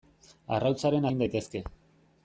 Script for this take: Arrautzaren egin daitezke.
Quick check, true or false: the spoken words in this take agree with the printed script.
true